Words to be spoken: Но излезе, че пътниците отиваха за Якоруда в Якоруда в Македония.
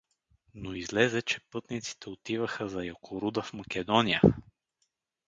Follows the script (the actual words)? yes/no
no